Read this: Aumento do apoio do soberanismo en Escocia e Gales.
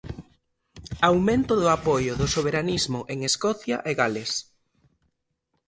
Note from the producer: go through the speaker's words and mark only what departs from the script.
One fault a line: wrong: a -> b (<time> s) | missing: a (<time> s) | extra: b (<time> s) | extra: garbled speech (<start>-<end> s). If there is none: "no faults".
no faults